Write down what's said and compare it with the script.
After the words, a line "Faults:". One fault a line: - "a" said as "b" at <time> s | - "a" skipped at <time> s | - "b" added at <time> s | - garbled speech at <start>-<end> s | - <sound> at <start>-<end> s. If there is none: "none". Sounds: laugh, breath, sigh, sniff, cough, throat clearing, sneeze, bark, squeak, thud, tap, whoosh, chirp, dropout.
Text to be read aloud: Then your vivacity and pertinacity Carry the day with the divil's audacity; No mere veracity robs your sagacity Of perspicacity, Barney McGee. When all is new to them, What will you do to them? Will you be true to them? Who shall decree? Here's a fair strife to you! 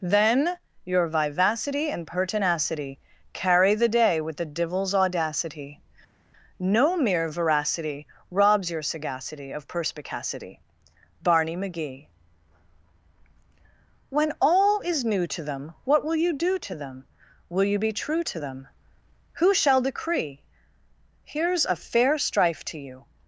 Then your vivacity and pertinacity Carry the day with the divil's audacity; No mere veracity robs your sagacity Of perspicacity, Barney McGee. When all is new to them, What will you do to them? Will you be true to them? Who shall decree? Here's a fair strife to you!
Faults:
none